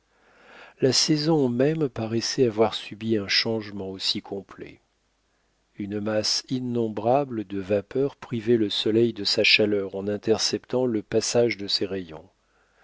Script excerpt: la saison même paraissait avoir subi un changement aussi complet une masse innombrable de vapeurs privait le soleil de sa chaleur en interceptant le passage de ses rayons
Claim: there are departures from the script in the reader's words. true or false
false